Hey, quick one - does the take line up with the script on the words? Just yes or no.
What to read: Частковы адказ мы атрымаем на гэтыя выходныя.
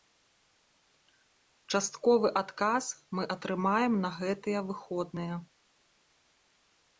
yes